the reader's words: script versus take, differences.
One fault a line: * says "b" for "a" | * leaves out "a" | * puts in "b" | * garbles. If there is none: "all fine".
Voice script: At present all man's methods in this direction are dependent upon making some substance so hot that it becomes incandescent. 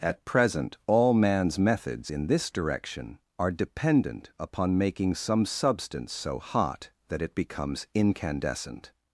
all fine